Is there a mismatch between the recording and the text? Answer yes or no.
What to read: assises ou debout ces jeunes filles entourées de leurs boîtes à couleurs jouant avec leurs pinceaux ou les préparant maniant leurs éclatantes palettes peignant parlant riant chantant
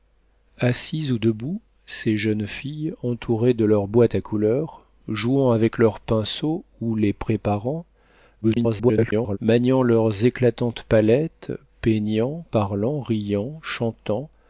yes